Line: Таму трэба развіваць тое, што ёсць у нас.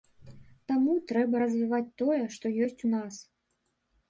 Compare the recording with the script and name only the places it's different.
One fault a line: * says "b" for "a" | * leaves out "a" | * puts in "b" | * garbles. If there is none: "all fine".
all fine